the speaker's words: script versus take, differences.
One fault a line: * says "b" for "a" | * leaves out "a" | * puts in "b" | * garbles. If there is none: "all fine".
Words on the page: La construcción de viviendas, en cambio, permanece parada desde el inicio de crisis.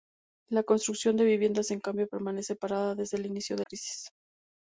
all fine